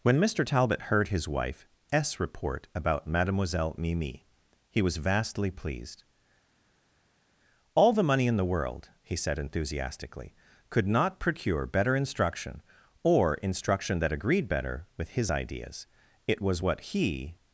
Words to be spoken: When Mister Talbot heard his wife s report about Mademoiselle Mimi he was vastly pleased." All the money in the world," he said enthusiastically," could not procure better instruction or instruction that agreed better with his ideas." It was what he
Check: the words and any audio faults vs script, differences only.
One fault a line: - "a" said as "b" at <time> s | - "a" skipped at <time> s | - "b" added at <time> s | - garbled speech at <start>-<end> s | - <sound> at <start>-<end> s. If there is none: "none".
none